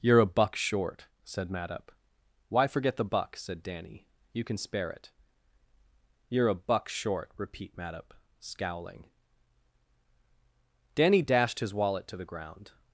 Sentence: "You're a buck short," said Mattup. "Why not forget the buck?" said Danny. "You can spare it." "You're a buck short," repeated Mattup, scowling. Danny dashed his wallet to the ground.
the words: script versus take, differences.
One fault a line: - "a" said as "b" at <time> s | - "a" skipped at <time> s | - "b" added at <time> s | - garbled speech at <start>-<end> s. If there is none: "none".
- "not" skipped at 2.7 s
- "repeated" said as "repeat" at 7.4 s